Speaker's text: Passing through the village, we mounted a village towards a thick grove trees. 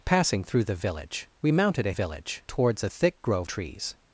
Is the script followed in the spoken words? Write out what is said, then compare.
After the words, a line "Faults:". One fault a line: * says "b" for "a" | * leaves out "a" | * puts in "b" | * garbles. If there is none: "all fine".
Passing through the village, we mounted a village towards a thick grove trees.
Faults:
all fine